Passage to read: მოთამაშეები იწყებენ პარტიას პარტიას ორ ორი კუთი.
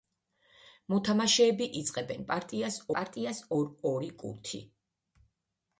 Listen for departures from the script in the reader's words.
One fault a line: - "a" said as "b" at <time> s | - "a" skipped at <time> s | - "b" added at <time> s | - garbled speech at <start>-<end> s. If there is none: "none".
none